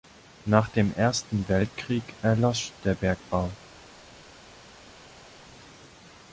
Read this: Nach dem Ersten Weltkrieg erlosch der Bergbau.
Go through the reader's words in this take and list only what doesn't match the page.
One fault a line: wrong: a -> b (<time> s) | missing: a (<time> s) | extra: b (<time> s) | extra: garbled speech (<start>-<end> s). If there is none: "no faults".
no faults